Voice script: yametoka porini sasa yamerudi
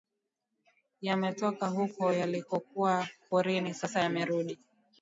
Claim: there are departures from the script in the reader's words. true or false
true